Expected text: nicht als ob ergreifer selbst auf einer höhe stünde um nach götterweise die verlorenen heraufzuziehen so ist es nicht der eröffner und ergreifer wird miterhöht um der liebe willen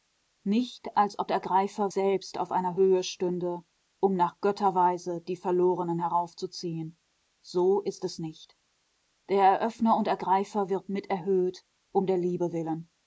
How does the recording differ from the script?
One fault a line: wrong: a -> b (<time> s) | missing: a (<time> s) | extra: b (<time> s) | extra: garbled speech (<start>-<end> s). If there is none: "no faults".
no faults